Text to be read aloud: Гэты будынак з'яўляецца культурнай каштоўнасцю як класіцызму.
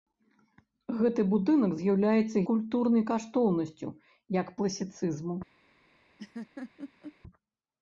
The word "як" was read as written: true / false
true